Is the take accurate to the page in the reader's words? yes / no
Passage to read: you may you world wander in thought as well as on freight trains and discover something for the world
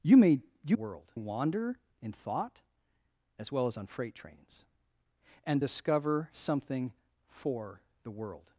yes